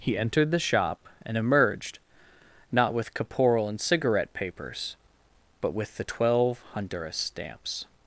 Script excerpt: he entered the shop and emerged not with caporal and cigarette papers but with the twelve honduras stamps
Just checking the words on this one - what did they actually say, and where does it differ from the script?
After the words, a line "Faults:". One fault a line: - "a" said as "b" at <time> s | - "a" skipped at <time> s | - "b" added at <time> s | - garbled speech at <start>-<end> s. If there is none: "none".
he entered the shop and emerged not with caporal and cigarette papers but with the twelve honduras stamps
Faults:
none